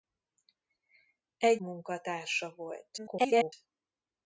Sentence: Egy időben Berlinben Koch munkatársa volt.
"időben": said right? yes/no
no